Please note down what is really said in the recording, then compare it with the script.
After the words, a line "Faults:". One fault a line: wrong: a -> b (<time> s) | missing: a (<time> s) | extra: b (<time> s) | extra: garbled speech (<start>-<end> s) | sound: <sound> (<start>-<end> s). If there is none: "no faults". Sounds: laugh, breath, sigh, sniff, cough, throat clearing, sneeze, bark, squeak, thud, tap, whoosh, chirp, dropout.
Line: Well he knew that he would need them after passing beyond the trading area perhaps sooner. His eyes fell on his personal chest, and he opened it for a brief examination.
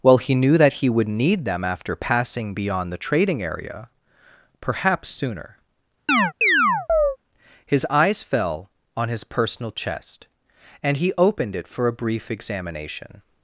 Well he knew that he would need them after passing beyond the trading area perhaps sooner. His eyes fell on his personal chest, and he opened it for a brief examination.
Faults:
sound: chirp (6.1-7.2 s)